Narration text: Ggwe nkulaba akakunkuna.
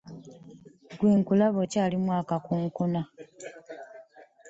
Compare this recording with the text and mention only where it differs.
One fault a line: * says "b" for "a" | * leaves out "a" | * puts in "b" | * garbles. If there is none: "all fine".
* puts in "okyalimu"